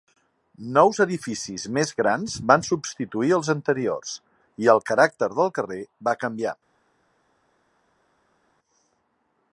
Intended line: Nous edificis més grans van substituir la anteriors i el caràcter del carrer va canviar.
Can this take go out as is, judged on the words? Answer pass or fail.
fail